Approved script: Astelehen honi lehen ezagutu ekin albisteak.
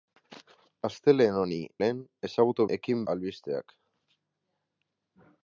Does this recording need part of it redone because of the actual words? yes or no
no